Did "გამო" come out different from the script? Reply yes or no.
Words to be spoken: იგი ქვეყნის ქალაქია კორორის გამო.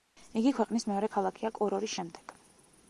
yes